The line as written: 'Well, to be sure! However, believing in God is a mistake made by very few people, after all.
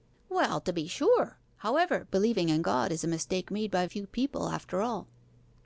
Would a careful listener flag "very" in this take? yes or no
yes